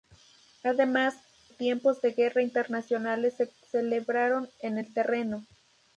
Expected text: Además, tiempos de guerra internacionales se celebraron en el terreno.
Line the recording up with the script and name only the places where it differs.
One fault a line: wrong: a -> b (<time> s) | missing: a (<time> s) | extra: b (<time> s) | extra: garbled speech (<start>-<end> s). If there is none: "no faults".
no faults